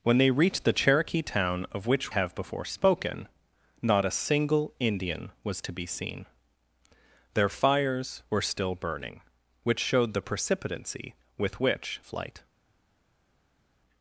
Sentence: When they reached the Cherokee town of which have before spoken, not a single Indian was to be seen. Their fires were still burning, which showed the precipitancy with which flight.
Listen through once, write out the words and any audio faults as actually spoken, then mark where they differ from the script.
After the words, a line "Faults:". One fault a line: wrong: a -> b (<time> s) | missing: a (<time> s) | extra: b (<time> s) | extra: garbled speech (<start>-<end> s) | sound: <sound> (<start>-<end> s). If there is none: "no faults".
When they reached the Cherokee town of which have before spoken, not a single Indian was to be seen. Their fires were still burning, which showed the precipitancy with which flight.
Faults:
no faults